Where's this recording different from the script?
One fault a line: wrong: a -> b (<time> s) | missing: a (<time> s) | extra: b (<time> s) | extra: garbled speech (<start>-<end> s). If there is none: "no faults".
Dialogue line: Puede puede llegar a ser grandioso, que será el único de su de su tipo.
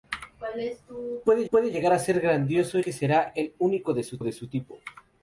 no faults